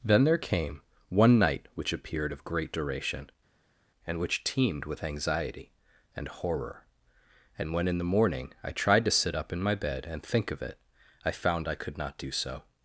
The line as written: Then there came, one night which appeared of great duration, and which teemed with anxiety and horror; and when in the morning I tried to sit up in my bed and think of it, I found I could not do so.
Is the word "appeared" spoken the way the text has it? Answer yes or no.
yes